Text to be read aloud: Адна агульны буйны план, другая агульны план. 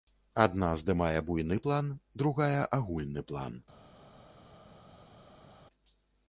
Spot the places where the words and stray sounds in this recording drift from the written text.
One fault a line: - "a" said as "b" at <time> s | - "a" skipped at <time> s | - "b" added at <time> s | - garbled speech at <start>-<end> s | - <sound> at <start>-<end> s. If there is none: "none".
- "агульны" said as "здымае" at 0.8 s